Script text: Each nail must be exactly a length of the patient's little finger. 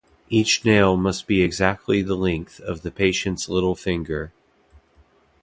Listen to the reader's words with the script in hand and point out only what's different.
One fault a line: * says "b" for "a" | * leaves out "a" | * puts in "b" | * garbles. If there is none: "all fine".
* says "the" for "a"